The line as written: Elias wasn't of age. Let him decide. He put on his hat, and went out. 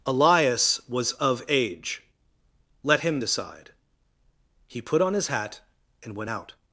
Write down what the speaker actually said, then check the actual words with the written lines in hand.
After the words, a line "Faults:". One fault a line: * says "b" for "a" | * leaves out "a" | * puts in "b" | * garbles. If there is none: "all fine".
Elias was of age. Let him decide. He put on his hat, and went out.
Faults:
* says "was" for "wasn't"